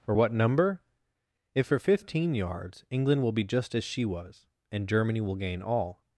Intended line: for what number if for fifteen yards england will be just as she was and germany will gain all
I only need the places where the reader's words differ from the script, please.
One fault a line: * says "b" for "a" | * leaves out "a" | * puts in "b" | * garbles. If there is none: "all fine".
all fine